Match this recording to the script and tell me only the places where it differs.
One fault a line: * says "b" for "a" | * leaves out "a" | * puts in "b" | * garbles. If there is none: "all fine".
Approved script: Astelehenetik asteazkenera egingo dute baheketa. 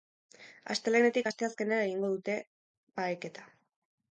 all fine